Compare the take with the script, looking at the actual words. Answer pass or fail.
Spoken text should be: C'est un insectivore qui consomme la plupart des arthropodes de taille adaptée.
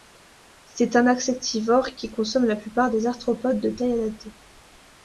pass